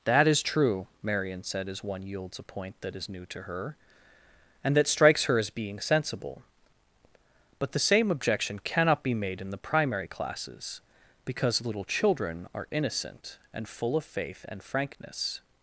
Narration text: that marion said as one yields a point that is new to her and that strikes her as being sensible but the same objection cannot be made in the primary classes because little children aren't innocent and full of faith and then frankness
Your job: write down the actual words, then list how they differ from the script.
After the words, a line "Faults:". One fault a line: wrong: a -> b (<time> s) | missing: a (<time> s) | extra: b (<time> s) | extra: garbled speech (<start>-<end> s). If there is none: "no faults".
that is true marion said as one yields a point that is new to her and that strikes her as being sensible but the same objection cannot be made in the primary classes because little children are innocent and full of faith and frankness
Faults:
extra: is true (0.3 s)
wrong: aren't -> are (12.5 s)
missing: then (14.6 s)